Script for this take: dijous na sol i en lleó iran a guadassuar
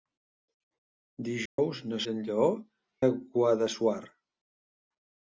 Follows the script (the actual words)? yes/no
no